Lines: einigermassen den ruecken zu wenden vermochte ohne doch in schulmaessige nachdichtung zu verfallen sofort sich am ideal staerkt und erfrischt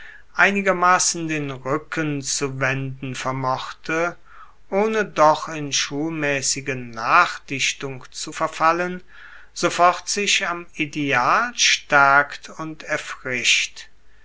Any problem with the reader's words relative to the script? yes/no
no